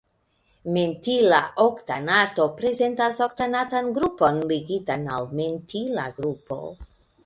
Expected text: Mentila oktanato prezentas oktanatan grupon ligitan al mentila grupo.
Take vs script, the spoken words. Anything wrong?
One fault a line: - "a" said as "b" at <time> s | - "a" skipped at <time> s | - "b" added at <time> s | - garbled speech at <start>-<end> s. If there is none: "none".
none